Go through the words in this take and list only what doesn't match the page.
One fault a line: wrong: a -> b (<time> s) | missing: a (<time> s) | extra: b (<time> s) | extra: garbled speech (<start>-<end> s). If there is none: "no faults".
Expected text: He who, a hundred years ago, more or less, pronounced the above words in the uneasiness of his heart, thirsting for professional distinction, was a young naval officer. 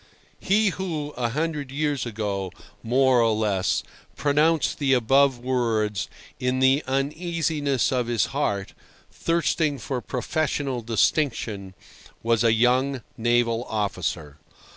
no faults